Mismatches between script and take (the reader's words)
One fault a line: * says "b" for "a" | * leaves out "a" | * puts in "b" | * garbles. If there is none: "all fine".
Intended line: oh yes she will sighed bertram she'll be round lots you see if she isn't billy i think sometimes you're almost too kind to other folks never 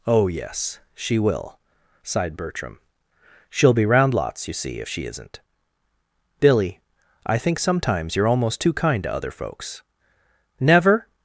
all fine